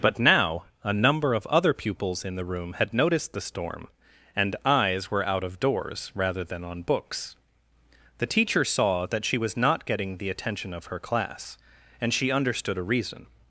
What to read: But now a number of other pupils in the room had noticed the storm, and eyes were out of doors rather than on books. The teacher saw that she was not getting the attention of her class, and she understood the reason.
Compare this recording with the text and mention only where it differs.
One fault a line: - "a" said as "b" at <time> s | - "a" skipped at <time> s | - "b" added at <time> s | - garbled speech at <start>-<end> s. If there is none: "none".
- "the" said as "a" at 12.8 s